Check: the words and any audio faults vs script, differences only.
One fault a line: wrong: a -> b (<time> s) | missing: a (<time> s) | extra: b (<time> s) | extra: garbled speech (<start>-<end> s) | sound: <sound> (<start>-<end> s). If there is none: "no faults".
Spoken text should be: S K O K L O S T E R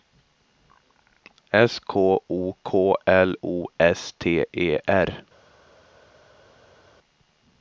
no faults